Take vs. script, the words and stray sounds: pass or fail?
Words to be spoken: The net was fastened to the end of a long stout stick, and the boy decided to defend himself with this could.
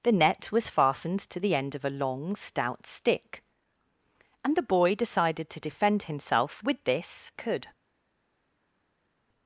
pass